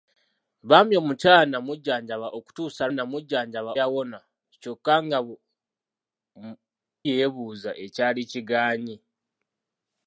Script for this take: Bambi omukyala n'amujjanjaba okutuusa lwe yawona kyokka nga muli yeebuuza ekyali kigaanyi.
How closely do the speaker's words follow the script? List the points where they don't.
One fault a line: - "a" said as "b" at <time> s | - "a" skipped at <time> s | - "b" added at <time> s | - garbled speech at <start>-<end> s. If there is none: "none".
- "lwe" said as "n'amujjanjaba" at 2.9 s
- "muli" skipped at 5.2 s